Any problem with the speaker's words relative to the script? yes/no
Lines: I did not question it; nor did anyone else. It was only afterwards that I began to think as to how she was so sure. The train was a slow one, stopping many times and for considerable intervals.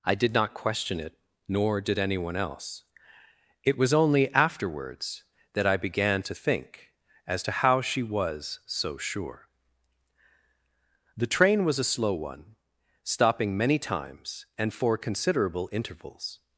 no